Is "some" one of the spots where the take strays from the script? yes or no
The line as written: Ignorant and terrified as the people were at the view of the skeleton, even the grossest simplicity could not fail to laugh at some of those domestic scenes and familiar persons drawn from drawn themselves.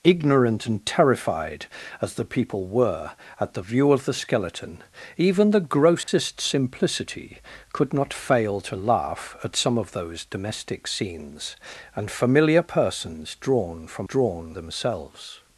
no